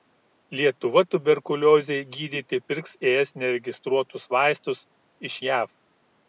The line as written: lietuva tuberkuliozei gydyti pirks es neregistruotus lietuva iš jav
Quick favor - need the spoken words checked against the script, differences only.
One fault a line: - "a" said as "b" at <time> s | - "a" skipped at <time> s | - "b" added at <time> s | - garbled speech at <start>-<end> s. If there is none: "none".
- "lietuva" said as "vaistus" at 4.4 s